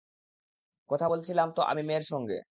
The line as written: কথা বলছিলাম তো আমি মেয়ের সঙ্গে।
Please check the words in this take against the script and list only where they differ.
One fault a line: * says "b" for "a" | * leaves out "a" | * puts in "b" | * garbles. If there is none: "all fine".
all fine